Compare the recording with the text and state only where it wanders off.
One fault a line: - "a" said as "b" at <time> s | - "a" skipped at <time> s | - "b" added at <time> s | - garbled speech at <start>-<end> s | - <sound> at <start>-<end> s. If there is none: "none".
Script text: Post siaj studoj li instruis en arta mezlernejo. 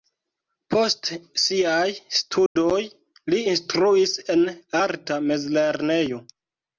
- dropout at 2.5-2.6 s